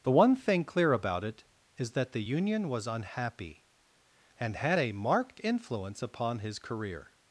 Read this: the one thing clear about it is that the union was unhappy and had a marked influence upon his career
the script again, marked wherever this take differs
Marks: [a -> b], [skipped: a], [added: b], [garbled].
the one thing clear about it is that the union was unhappy and had a marked influence upon his career